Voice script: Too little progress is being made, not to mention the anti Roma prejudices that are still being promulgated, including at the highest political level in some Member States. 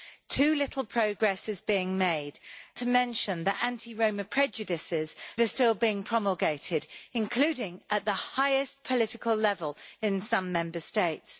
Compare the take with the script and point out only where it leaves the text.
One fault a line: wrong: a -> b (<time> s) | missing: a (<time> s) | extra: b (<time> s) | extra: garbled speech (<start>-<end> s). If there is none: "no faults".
missing: not (2.4 s)
missing: that (5.2 s)